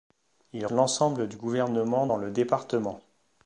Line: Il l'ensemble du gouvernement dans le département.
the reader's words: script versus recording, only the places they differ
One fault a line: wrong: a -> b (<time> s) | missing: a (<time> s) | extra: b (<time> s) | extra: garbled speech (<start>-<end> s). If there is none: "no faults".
no faults